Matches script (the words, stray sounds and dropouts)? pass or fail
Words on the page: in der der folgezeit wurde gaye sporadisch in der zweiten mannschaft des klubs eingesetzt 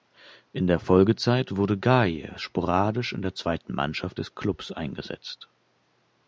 fail